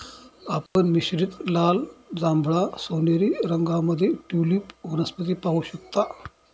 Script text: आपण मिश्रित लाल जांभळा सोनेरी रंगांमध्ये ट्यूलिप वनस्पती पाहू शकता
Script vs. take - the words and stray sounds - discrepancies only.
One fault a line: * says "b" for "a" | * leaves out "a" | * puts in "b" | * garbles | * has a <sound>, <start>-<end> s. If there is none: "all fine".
* has a dropout, 0.7-0.8 s